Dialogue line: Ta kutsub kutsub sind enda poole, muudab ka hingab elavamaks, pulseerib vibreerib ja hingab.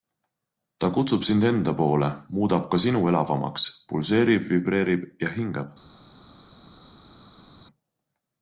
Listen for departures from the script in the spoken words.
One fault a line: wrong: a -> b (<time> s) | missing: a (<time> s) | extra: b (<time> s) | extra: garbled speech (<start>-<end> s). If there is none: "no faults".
missing: kutsub (1.2 s)
wrong: hingab -> sinu (2.8 s)